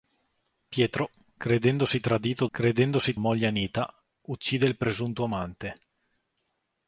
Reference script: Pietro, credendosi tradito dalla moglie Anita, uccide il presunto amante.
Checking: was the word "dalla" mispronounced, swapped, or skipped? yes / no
yes